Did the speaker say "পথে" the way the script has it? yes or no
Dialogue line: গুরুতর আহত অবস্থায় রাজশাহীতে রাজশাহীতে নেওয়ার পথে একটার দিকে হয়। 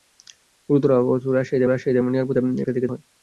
yes